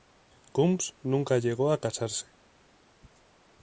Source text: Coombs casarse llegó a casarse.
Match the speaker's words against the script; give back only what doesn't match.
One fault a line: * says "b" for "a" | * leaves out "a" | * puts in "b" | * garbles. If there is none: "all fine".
* says "nunca" for "casarse"